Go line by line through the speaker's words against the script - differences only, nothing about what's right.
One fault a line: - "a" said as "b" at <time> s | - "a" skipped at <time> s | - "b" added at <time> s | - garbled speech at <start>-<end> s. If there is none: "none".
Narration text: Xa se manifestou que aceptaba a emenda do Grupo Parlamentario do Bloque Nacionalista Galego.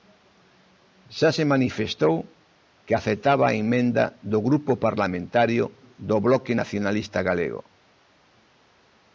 none